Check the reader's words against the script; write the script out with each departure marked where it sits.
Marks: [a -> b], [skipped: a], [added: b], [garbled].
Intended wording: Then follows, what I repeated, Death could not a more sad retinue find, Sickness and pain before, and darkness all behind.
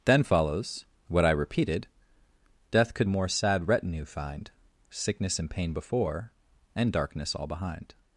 Then follows, what I repeated, Death could [skipped: not] a more sad retinue find, Sickness and pain before, and darkness all behind.